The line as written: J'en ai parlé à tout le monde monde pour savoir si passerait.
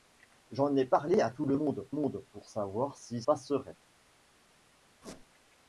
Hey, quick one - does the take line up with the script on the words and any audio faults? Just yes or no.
no